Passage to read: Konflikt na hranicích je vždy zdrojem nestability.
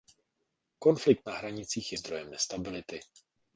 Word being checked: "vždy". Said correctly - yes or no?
no